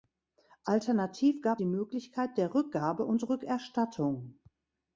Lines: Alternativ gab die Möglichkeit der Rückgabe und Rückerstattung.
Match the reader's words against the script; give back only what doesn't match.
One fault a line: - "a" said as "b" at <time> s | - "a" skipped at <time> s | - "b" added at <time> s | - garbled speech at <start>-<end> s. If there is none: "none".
none